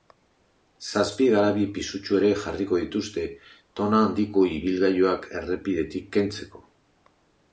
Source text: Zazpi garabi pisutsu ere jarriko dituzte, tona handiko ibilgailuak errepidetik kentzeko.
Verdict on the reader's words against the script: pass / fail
pass